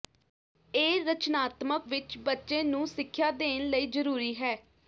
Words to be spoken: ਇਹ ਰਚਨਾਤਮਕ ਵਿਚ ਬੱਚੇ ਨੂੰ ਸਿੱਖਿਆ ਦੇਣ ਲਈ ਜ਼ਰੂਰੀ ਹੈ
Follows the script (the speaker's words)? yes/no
yes